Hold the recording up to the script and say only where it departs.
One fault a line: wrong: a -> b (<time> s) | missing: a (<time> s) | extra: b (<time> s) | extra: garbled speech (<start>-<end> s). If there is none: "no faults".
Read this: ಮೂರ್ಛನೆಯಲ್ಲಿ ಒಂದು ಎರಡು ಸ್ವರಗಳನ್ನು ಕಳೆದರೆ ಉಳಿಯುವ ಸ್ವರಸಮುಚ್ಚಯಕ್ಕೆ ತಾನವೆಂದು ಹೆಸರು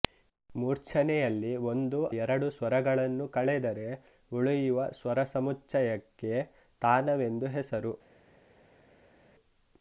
no faults